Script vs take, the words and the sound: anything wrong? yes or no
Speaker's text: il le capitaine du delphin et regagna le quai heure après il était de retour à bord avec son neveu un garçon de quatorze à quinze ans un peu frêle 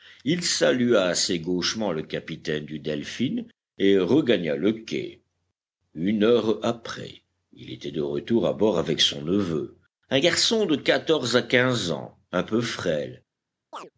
yes